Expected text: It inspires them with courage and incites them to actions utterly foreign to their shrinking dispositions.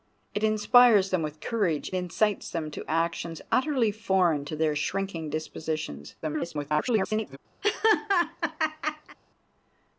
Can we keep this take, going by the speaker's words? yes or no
no